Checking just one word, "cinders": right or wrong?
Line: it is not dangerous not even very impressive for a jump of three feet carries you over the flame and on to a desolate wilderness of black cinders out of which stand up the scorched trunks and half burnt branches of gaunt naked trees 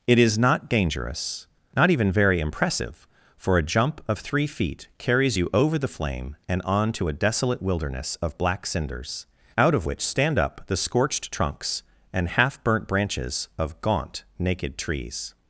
right